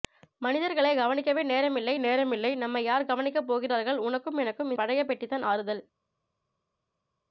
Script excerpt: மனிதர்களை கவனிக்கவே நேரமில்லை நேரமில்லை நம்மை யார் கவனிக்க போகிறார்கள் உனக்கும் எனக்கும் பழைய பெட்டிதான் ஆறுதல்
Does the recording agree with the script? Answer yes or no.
yes